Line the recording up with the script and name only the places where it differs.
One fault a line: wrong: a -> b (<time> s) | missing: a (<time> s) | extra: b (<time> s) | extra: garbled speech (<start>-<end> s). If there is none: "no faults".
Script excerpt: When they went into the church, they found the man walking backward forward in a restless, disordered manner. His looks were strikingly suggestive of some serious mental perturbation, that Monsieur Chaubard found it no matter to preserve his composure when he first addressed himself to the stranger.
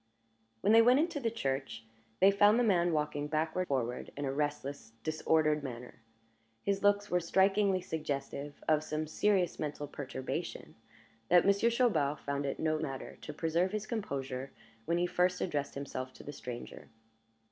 no faults